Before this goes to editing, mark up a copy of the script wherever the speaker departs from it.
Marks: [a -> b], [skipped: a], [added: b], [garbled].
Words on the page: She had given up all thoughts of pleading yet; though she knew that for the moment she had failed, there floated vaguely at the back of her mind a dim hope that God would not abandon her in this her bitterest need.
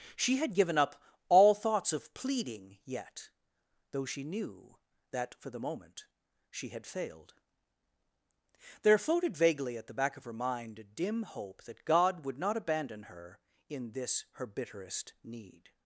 She had given up all thoughts of pleading yet; though she knew that for the moment she had failed, there floated vaguely at the back of her mind a dim hope that God would not abandon her in this her bitterest need.